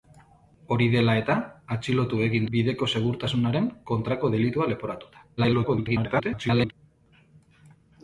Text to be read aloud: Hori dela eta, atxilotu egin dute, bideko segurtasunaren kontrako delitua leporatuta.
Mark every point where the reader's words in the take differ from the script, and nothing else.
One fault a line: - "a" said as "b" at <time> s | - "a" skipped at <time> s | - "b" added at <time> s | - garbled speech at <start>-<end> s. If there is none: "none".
- "dute" skipped at 2.5 s
- garbled speech at 5.4-6.7 s